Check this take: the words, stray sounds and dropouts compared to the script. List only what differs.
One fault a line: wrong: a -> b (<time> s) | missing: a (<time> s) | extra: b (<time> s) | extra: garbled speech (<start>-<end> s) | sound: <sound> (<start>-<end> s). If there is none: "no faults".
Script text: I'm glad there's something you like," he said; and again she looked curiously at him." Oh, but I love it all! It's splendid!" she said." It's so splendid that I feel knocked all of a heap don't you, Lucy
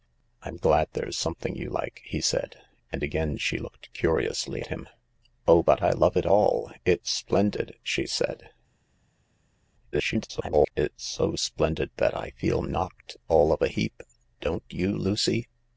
missing: at (4.6 s)
extra: garbled speech (9.9-10.7 s)